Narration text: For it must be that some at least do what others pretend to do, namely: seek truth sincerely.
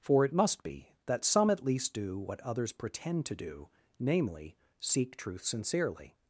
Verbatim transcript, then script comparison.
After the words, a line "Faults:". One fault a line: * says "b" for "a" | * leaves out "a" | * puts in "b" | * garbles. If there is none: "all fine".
For it must be that some at least do what others pretend to do, namely: seek truth sincerely.
Faults:
all fine